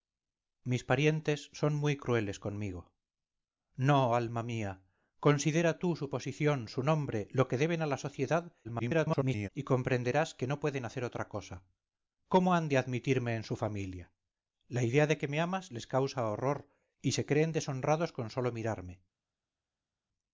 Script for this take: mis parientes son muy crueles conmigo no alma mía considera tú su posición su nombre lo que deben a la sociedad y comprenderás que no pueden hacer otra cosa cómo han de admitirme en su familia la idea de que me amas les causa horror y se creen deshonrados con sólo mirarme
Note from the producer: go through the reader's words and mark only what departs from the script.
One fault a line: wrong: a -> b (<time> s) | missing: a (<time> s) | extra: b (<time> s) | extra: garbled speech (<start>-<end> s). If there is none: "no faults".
extra: garbled speech (8.6-9.5 s)